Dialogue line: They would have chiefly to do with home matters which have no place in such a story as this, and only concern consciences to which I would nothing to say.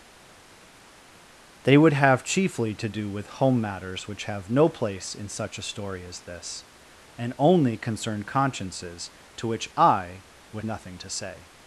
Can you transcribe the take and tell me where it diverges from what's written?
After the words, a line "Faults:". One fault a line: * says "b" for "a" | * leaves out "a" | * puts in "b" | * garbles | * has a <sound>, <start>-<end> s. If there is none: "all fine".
They would have chiefly to do with home matters which have no place in such a story as this, and only concern consciences to which I would nothing to say.
Faults:
all fine